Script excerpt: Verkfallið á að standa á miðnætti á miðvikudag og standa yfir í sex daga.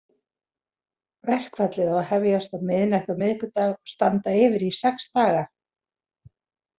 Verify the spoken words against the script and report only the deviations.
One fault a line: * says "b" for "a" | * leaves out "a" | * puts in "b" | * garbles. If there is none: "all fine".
* says "hefjast" for "standa"